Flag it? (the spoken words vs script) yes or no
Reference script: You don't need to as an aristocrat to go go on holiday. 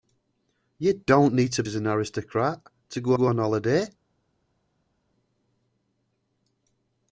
no